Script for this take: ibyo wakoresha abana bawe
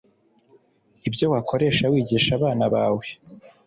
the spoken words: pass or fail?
fail